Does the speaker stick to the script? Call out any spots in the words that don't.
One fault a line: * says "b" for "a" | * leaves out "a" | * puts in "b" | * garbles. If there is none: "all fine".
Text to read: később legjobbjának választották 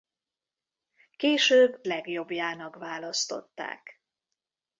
all fine